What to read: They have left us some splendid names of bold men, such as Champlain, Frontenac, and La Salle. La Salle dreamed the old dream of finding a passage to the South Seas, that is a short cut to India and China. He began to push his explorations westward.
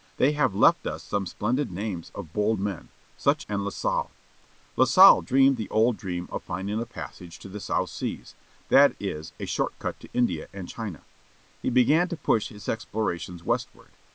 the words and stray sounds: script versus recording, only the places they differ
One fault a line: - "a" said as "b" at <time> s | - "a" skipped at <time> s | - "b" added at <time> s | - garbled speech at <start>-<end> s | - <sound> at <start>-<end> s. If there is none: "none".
- "as Champlain Frontenac" skipped at 3.5 s